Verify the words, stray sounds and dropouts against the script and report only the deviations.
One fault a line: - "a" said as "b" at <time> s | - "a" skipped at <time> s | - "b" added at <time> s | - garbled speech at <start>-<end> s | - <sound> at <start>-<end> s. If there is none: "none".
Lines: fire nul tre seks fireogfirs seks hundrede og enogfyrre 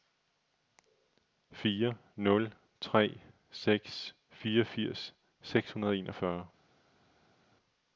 none